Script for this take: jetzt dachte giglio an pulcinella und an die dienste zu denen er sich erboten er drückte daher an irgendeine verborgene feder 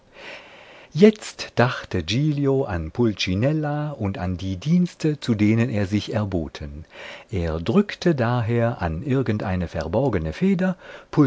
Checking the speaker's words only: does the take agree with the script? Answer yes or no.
yes